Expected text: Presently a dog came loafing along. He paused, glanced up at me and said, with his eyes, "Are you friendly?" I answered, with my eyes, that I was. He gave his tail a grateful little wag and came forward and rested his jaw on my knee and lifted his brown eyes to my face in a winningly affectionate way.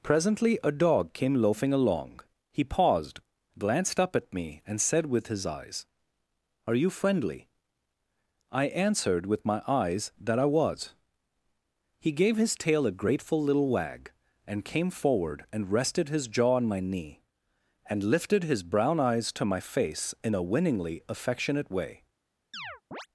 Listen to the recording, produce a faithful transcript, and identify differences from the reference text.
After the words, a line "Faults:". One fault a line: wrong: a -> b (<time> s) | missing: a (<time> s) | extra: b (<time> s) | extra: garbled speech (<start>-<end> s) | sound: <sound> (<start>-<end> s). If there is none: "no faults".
Presently a dog came loafing along. He paused, glanced up at me and said, with his eyes, "Are you friendly?" I answered, with my eyes, that I was. He gave his tail a grateful little wag and came forward and rested his jaw on my knee and lifted his brown eyes to my face in a winningly affectionate way.
Faults:
sound: chirp (22.5-23.1 s)